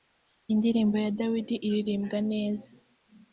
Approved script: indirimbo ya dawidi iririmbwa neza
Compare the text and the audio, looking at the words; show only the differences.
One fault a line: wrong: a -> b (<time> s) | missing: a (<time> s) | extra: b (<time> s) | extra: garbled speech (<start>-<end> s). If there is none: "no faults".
no faults